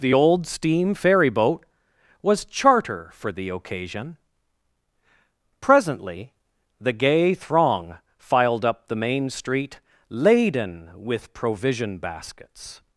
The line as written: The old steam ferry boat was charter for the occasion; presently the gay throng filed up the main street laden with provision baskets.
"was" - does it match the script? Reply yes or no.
yes